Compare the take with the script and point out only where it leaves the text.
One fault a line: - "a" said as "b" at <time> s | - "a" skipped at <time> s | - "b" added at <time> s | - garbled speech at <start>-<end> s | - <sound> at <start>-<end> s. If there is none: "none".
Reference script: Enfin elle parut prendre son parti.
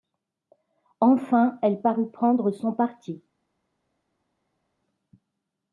none